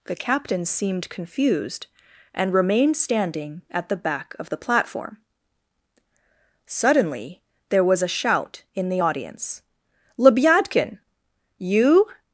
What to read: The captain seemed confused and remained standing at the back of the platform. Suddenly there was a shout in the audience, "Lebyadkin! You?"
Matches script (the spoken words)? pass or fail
pass